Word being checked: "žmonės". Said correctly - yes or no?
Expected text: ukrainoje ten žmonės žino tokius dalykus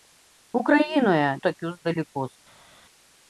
no